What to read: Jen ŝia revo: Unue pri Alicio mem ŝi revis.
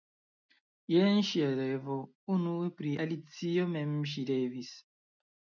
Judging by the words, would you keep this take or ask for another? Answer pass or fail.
pass